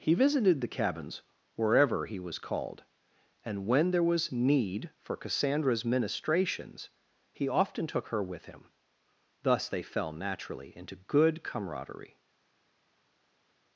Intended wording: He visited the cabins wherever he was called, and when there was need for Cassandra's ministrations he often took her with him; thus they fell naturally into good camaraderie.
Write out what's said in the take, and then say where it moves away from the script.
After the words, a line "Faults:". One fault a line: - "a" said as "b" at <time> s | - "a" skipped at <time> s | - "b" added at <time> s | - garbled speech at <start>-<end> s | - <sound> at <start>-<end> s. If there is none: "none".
He visited the cabins wherever he was called, and when there was need for Cassandra's ministrations he often took her with him; thus they fell naturally into good camaraderie.
Faults:
none